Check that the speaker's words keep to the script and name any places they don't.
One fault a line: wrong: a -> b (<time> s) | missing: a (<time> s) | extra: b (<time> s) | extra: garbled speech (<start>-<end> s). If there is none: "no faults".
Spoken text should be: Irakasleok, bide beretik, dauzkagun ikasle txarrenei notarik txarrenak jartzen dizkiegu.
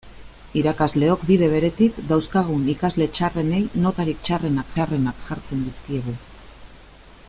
extra: txarrenak (4.8 s)